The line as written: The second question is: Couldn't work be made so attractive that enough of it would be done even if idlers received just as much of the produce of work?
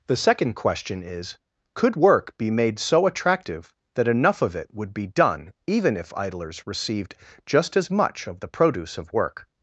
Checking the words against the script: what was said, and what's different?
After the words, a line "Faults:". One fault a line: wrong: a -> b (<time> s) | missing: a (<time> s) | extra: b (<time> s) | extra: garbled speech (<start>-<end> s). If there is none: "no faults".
The second question is: Could work be made so attractive that enough of it would be done even if idlers received just as much of the produce of work?
Faults:
wrong: Couldn't -> Could (1.8 s)